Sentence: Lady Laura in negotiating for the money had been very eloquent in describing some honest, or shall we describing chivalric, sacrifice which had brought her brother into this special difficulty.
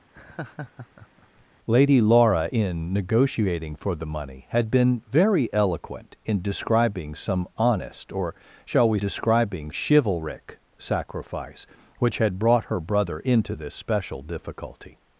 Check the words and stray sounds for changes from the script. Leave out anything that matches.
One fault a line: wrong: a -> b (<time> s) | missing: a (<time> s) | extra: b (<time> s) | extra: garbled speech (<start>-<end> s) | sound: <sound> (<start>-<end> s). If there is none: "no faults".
sound: laugh (0.1-1.5 s)